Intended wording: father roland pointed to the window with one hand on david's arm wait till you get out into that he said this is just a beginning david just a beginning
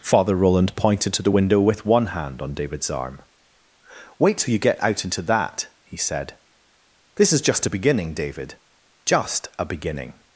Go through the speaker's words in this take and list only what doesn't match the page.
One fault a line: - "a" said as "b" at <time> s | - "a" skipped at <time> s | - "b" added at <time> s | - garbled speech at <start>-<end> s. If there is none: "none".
none